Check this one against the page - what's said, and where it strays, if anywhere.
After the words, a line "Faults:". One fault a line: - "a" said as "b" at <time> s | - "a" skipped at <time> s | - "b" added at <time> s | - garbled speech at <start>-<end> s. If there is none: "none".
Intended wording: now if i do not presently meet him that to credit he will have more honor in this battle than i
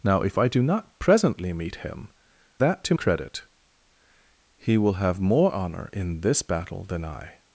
now if i do not presently meet him that to credit he will have more honor in this battle than i
Faults:
none